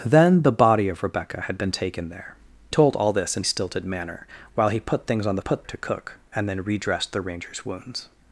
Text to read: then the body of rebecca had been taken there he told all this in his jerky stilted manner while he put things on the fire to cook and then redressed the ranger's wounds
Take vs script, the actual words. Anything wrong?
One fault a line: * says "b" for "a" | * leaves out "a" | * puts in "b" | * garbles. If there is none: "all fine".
* leaves out "he"
* leaves out "his jerky"
* says "put" for "fire"